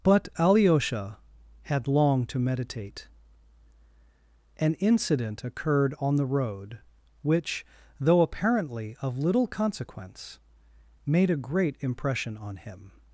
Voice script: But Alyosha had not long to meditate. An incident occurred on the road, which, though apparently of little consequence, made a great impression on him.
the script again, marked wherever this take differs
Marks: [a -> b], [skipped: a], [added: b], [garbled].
But Alyosha had [skipped: not] long to meditate. An incident occurred on the road, which, though apparently of little consequence, made a great impression on him.